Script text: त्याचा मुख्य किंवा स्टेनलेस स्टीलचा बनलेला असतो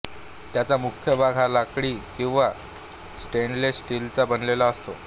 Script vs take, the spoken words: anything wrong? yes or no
yes